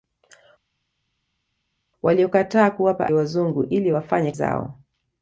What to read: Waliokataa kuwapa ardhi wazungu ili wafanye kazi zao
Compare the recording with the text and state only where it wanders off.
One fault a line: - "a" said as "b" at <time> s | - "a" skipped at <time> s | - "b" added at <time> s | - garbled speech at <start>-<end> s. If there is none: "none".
- "ardhi" skipped at 3.1 s
- "kazi" skipped at 4.3 s